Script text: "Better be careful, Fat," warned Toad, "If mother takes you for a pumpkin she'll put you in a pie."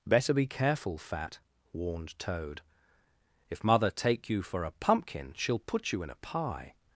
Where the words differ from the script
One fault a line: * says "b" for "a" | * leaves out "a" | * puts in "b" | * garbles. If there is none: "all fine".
* says "take" for "takes"